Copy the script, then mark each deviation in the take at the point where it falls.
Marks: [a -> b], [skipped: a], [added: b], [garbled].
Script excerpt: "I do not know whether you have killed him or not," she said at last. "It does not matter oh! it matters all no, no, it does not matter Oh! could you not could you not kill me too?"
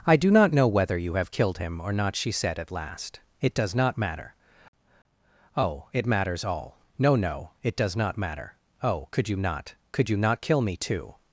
"I do not know whether you have killed him or not," she said at last. "It does not matter oh! it matters all no, no, it does not matter Oh! could you not could you not kill me too?"